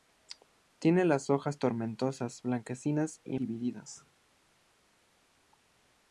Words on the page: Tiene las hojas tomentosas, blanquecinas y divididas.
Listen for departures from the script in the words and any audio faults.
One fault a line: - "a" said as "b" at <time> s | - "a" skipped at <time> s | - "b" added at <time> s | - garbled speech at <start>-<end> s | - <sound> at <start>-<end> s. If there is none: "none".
none